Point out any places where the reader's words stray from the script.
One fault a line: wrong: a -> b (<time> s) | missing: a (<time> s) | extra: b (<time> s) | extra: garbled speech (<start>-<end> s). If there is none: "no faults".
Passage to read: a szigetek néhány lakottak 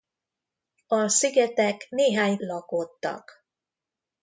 no faults